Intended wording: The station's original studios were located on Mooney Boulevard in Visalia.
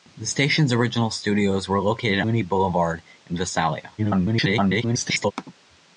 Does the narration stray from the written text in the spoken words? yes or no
yes